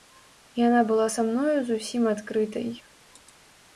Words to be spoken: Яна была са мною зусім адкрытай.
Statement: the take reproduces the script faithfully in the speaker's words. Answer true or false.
true